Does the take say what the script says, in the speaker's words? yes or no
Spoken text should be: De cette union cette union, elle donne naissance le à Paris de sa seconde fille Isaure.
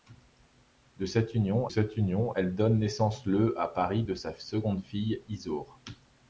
yes